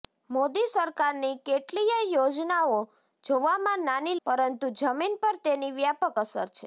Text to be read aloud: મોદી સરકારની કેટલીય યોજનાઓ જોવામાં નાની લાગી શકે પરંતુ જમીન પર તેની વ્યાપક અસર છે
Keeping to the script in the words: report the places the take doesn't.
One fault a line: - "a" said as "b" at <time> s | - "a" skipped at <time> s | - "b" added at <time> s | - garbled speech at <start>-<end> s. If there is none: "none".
- "લાગી શકે" skipped at 4.2 s